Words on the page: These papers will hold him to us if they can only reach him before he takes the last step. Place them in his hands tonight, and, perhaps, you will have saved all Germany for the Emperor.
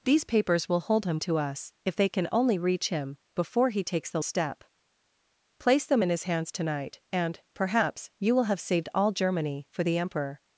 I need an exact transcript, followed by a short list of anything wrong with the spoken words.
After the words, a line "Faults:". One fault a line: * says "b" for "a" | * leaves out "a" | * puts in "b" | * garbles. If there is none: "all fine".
These papers will hold him to us if they can only reach him before he takes the step. Place them in his hands tonight, and, perhaps, you will have saved all Germany for the Emperor.
Faults:
* leaves out "last"